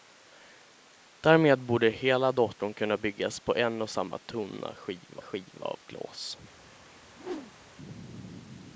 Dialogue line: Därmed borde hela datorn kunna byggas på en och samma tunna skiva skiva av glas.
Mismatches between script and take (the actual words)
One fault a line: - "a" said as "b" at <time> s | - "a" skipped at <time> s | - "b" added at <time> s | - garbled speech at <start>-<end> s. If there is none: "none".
none